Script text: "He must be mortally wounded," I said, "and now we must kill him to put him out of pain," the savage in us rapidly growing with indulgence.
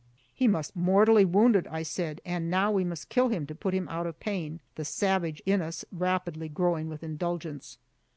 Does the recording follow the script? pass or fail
fail